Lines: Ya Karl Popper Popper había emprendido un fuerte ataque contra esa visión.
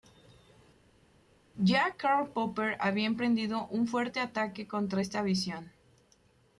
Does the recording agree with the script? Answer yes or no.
no